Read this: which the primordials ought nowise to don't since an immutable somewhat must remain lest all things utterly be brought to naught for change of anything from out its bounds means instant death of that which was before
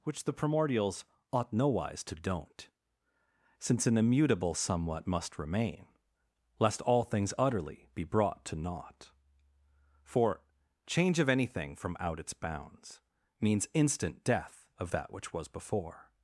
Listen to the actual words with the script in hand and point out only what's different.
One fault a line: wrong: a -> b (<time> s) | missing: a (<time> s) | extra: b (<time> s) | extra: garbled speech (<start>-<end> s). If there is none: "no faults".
no faults